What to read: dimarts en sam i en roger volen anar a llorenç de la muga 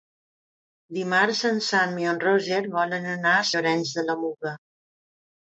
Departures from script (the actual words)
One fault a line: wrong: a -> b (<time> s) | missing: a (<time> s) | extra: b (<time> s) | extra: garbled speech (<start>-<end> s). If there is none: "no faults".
no faults